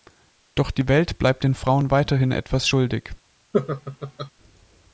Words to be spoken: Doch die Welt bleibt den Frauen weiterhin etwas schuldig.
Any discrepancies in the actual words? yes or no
no